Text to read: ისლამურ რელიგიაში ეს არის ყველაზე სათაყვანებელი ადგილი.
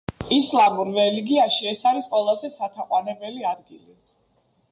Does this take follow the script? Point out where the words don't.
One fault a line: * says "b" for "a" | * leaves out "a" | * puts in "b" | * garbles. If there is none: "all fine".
all fine